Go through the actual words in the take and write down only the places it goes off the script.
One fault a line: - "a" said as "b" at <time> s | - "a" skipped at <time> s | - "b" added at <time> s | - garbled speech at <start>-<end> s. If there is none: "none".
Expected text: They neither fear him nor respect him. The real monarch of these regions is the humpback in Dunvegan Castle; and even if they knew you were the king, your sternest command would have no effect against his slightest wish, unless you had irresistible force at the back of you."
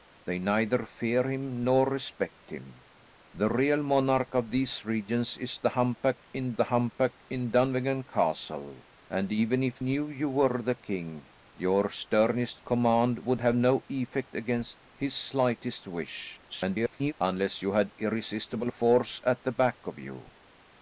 - "the humpback in" added at 6.5 s
- "they" skipped at 9.8 s
- garbled speech at 16.5-17.1 s